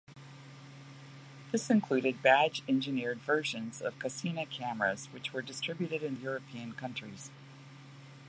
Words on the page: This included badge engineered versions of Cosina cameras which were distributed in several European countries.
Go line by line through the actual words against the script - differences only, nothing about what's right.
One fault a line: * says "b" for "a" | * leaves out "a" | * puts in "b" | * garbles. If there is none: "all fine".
* leaves out "several"